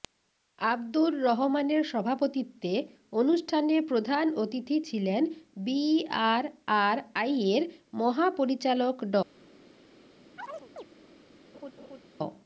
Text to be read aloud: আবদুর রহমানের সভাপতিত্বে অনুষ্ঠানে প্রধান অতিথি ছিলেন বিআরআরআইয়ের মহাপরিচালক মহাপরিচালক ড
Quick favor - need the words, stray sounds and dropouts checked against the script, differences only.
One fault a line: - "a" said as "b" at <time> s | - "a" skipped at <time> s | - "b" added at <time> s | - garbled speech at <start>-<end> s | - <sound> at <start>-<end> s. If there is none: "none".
- "মহাপরিচালক" skipped at 8.9 s
- chirp at 10.4-10.8 s
- laugh at 11.5-12.0 s